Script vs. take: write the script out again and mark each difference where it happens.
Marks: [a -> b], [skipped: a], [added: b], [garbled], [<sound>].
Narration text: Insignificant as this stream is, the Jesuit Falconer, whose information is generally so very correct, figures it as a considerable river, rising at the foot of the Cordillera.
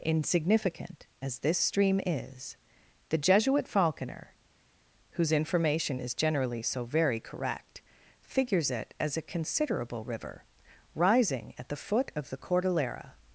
Insignificant as this stream is, the Jesuit Falconer, whose information is generally so very correct, figures it as a considerable river, rising at the foot of the Cordillera.